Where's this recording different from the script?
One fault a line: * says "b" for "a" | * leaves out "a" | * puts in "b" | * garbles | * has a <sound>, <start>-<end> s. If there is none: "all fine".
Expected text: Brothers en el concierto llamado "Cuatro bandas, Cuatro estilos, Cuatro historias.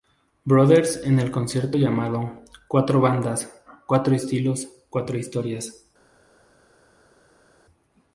all fine